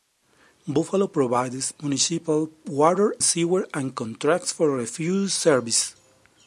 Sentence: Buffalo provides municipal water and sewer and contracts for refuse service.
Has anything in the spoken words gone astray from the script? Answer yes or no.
yes